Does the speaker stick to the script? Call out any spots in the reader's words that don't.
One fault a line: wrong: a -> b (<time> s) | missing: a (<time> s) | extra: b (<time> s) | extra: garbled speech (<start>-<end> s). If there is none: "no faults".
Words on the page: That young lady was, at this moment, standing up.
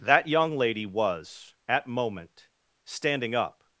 missing: this (1.9 s)